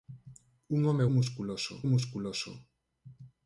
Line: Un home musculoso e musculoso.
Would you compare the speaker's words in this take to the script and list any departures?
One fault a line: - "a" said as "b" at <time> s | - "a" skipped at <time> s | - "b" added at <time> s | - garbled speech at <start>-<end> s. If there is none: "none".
none